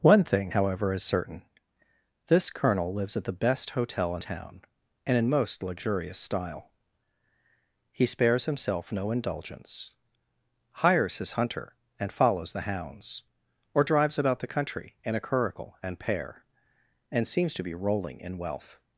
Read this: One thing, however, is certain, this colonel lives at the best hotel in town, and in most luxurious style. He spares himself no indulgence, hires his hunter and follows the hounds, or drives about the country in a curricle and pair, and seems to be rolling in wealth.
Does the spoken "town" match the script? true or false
true